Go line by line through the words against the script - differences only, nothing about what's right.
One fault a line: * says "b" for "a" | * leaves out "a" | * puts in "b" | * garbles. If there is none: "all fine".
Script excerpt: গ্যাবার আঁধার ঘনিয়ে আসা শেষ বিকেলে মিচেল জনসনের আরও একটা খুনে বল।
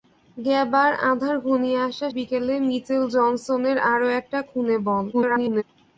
* leaves out "শেষ"
* garbles